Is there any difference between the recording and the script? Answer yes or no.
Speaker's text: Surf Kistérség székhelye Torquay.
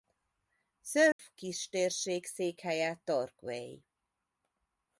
no